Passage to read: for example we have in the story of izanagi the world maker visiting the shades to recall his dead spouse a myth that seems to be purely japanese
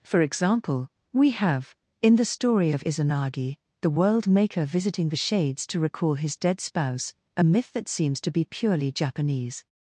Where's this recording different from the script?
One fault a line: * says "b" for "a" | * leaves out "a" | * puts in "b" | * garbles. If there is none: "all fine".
all fine